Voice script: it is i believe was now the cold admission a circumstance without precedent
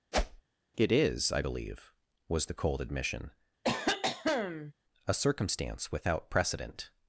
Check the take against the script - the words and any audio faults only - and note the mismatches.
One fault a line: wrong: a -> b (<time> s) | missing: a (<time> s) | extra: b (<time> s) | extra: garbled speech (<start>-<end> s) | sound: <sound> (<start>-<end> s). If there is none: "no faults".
sound: whoosh (0.1-0.4 s)
missing: now (2.5 s)
sound: cough (3.6-4.7 s)